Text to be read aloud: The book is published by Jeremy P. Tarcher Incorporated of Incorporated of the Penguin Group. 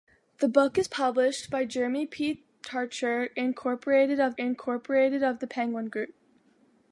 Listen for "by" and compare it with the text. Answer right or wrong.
right